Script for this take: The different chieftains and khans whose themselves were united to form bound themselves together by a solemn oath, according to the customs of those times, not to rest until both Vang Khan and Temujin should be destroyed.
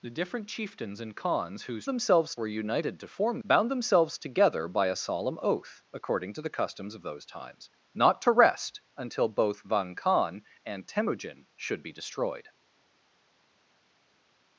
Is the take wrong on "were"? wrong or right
right